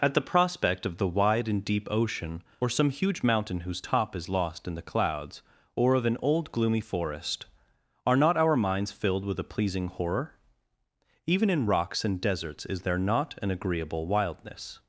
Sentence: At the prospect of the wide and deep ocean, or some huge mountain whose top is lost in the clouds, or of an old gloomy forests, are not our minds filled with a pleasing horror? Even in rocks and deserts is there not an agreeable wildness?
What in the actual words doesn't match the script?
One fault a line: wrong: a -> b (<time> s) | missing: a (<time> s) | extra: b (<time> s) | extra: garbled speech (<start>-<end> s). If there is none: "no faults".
wrong: forests -> forest (6.8 s)